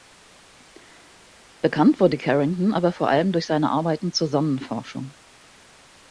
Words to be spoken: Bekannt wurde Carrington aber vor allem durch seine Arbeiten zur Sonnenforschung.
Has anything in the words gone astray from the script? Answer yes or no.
no